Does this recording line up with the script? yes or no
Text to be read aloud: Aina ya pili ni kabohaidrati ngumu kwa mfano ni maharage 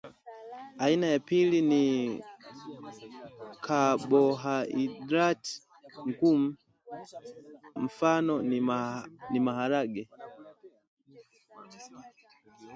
no